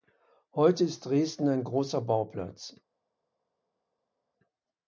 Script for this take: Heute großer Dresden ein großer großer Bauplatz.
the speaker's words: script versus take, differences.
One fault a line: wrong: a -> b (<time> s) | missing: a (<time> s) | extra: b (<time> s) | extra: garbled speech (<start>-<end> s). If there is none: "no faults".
wrong: großer -> ist (0.8 s)
missing: großer (2.0 s)